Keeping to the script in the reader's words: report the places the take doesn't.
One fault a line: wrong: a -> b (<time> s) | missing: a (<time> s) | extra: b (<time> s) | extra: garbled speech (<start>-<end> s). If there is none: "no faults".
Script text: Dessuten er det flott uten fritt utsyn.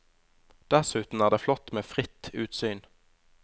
wrong: uten -> med (1.7 s)